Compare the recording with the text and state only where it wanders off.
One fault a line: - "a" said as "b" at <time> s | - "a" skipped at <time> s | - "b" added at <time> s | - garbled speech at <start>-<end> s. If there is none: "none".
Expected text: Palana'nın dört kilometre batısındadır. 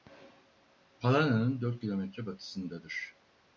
none